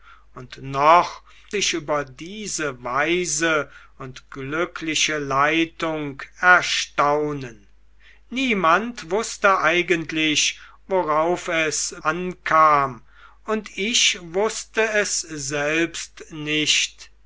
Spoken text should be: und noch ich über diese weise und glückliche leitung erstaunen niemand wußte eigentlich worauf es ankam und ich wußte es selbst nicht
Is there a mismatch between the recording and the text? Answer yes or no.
no